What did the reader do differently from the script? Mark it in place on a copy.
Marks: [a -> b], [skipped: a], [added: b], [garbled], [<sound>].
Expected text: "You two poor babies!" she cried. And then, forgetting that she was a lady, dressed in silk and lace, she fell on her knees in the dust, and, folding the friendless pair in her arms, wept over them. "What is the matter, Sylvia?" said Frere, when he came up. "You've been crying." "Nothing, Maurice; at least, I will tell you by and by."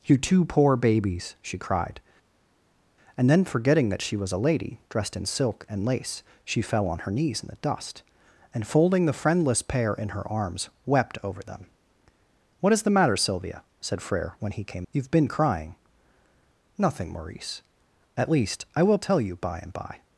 "You two poor babies!" she cried. And then, forgetting that she was a lady, dressed in silk and lace, she fell on her knees in the dust, and, folding the friendless pair in her arms, wept over them. "What is the matter, Sylvia?" said Frere, when he came [skipped: up.] "You've been crying." "Nothing, Maurice; at least, I will tell you by and by."